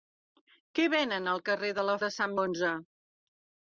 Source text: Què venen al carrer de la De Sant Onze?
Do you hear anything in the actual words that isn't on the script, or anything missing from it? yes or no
no